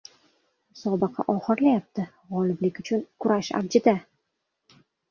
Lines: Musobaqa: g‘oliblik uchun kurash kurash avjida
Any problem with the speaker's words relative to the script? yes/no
yes